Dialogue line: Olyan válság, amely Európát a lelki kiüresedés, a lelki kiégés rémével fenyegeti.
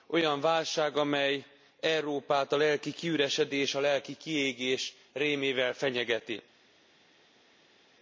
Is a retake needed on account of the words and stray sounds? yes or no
no